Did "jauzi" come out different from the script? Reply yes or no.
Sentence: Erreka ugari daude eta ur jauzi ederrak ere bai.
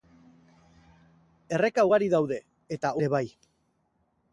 yes